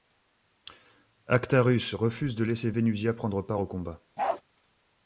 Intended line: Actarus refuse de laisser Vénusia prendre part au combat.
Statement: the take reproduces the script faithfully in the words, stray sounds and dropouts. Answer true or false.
false